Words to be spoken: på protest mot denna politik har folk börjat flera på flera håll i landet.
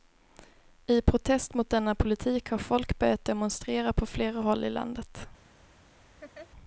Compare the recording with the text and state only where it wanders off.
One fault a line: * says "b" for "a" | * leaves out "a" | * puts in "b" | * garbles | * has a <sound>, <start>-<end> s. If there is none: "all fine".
* says "I" for "på"
* says "demonstrera" for "flera"
* has a laugh, 6.2-6.5 s